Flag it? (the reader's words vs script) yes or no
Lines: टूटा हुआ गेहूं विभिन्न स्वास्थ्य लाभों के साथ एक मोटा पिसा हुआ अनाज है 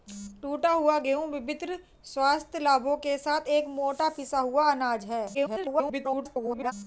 yes